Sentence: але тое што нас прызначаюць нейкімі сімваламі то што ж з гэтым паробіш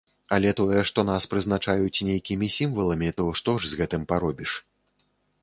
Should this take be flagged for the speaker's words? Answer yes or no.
no